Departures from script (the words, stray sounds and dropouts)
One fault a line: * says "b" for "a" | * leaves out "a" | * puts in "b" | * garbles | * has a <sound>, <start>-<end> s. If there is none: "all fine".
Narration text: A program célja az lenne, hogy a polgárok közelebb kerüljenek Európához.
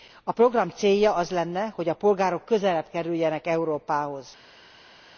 all fine